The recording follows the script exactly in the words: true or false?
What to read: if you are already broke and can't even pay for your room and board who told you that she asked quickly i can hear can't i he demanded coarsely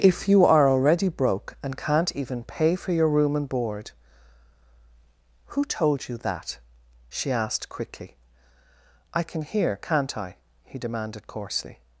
true